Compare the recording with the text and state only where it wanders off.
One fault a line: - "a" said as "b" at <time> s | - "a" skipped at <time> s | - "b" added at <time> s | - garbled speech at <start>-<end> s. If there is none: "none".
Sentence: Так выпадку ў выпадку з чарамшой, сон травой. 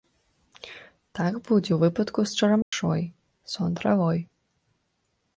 - "выпадку" said as "будзе" at 1.5 s